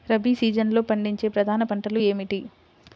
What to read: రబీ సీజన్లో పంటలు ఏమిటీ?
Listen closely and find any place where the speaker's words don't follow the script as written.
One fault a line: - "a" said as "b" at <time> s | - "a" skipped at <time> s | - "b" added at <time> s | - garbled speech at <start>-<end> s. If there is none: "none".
- "పండించే ప్రధాన" added at 0.8 s